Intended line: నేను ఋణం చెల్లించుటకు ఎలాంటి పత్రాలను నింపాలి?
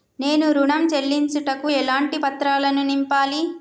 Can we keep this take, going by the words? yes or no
yes